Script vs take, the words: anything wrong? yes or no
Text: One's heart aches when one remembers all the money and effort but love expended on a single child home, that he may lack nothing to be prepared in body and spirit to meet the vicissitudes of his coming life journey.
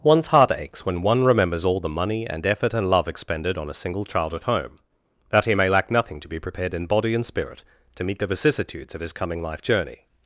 yes